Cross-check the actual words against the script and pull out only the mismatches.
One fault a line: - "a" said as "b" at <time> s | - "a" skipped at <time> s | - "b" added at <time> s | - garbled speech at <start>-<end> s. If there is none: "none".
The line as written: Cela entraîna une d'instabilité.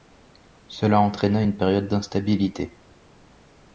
- "période" added at 1.6 s